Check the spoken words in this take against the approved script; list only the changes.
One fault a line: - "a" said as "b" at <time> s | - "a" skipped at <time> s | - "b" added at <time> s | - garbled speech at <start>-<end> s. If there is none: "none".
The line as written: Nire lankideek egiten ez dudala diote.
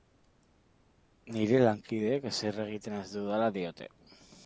- "ezer" added at 2.3 s